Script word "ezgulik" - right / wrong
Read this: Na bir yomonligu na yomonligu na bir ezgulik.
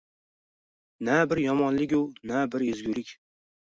right